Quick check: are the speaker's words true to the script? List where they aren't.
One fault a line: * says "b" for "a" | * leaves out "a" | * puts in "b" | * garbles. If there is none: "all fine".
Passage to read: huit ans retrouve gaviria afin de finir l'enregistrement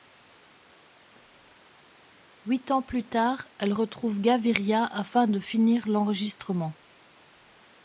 * puts in "plus tard elle"